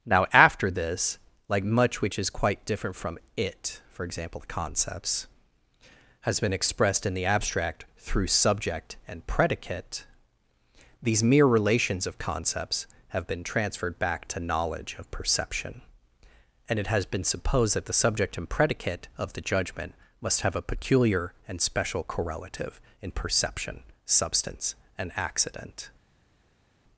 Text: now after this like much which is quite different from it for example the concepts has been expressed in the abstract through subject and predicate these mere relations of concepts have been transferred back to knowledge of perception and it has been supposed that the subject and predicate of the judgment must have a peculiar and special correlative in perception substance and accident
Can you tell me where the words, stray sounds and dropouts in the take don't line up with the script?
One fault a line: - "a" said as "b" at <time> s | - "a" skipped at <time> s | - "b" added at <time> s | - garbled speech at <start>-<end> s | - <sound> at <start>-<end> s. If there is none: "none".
none